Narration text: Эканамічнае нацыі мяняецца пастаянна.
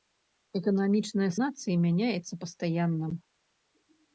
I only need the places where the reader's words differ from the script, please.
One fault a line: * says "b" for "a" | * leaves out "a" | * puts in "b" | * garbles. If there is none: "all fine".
all fine